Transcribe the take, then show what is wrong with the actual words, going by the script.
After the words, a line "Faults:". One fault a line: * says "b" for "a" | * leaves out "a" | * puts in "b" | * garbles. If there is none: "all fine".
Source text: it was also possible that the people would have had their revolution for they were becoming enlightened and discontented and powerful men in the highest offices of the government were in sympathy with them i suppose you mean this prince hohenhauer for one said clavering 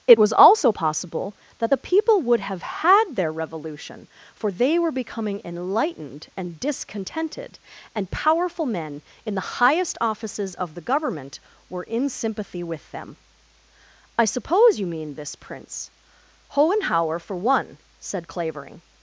it was also possible that the people would have had their revolution for they were becoming enlightened and discontented and powerful men in the highest offices of the government were in sympathy with them i suppose you mean this prince hohenhauer for one said clavering
Faults:
all fine